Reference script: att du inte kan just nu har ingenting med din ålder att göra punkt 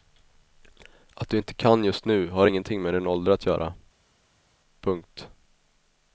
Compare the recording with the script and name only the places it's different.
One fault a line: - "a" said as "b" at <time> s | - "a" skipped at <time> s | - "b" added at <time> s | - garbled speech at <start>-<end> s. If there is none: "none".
none